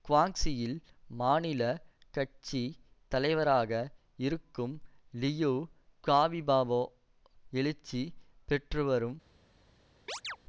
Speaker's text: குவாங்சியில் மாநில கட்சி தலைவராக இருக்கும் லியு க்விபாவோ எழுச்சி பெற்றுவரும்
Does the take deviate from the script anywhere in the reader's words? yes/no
no